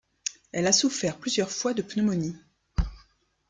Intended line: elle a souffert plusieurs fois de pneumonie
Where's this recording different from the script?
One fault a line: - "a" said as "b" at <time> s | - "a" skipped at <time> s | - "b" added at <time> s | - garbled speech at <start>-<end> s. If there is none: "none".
none